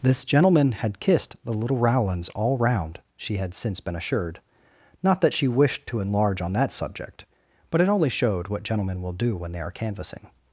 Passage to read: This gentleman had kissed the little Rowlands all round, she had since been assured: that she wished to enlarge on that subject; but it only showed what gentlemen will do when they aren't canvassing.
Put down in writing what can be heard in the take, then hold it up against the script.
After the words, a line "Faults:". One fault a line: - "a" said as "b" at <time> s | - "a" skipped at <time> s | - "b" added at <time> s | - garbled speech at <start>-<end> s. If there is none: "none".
This gentleman had kissed the little Rowlands all round, she had since been assured: not that she wished to enlarge on that subject; but it only showed what gentlemen will do when they are canvassing.
Faults:
- "not" added at 5.0 s
- "aren't" said as "are" at 9.6 s